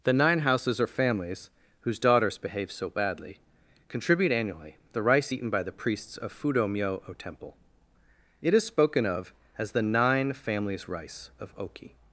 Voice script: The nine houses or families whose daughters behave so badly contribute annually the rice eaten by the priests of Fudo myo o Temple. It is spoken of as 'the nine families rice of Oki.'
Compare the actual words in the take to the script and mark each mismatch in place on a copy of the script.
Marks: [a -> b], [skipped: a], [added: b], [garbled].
The nine houses or families whose daughters behave so badly contribute annually the rice eaten by the priests of Fudo myo o Temple. It is spoken of as 'the nine families rice of Oki.'